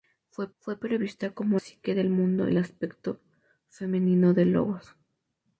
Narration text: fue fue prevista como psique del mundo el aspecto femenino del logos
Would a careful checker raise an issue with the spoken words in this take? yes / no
no